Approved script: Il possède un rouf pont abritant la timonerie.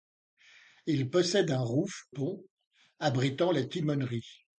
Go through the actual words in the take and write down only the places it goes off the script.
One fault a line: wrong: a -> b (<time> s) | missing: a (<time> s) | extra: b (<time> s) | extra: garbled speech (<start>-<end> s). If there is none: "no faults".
no faults